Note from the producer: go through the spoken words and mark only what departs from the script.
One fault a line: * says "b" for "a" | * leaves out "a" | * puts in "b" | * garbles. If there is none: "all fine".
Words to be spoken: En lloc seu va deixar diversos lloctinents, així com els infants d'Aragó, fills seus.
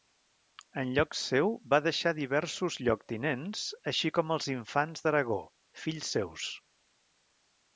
all fine